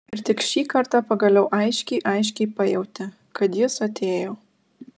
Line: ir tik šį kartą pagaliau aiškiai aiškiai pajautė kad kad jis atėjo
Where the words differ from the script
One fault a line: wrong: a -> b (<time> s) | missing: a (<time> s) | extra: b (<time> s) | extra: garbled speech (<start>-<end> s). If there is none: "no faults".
missing: kad (3.6 s)